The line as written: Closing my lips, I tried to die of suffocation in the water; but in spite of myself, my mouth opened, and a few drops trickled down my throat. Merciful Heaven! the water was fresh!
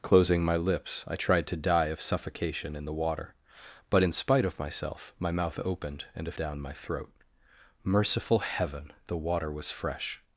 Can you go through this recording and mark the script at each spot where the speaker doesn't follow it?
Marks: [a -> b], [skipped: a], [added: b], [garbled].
Closing my lips, I tried to die of suffocation in the water; but in spite of myself, my mouth opened, and a [skipped: few drops trickled] down my throat. Merciful Heaven! the water was fresh!